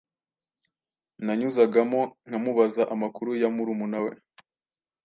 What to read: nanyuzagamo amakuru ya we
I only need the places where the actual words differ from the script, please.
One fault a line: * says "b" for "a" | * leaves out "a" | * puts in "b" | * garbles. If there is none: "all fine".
* puts in "nkamubaza"
* puts in "murumuna"